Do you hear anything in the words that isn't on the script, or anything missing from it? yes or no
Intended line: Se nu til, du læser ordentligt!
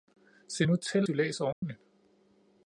no